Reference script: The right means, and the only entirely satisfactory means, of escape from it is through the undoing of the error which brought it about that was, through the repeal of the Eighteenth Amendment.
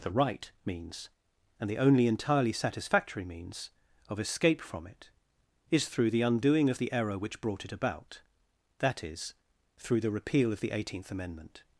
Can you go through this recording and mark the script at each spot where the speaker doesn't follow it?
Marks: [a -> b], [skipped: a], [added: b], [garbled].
The right means, and the only entirely satisfactory means, of escape from it is through the undoing of the error which brought it about that [was, -> is] through the repeal of the Eighteenth Amendment.